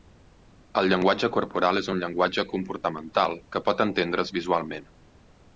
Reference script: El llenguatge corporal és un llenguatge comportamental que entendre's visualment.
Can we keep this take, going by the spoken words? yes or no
no